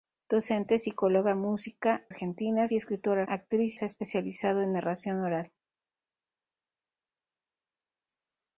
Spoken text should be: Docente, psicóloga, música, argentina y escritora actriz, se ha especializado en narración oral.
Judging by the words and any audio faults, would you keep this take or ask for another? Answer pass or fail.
pass